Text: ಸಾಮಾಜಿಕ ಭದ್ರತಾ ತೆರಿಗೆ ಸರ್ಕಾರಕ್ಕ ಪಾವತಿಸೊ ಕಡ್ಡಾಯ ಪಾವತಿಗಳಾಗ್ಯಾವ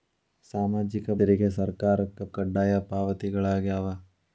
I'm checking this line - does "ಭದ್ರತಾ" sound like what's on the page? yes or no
no